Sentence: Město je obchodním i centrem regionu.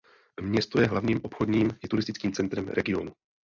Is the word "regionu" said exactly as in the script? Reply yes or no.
yes